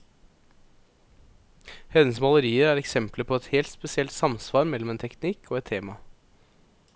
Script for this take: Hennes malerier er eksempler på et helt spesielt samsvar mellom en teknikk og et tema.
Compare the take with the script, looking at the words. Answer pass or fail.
pass